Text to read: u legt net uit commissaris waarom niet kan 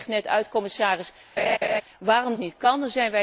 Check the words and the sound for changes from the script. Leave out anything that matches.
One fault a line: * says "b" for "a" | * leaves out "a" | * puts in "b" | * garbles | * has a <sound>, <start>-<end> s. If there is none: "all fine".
* has a laugh, 1.4-1.8 s